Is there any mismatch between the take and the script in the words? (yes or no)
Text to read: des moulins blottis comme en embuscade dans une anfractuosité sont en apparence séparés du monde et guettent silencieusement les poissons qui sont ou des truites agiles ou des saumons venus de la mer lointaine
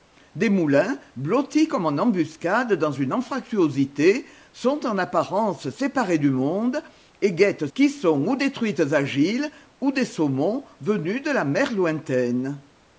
yes